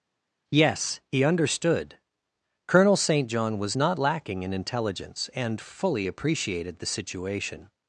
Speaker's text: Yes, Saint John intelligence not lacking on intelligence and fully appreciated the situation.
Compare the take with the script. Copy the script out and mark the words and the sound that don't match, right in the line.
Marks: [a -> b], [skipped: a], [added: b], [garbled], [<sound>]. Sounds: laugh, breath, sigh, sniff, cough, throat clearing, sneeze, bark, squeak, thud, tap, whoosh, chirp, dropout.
Yes, [added: he understood Colonel] Saint John [intelligence -> was] not lacking [on -> in] intelligence and fully appreciated the situation.